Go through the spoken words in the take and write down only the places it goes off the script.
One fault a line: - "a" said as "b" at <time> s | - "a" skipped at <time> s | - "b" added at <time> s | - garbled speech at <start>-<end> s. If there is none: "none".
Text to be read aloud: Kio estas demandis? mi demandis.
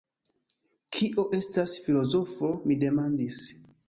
- "demandis" said as "filozofo" at 1.9 s